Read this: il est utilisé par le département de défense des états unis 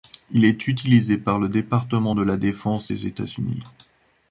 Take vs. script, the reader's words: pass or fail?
fail